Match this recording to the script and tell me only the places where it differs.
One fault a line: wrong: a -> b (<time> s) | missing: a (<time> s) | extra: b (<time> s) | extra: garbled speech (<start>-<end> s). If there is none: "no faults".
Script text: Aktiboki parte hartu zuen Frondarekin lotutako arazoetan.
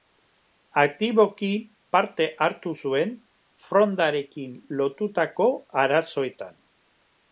no faults